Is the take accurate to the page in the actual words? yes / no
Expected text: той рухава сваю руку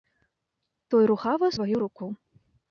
yes